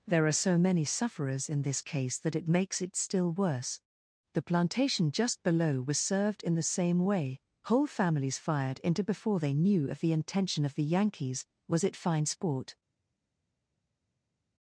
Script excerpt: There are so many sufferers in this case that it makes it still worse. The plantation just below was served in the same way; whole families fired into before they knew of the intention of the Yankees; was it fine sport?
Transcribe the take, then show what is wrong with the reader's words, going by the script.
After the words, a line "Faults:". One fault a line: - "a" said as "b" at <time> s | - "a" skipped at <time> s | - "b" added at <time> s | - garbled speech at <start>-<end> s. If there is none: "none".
There are so many sufferers in this case that it makes it still worse. The plantation just below was served in the same way; whole families fired into before they knew of the intention of the Yankees; was it fine sport?
Faults:
none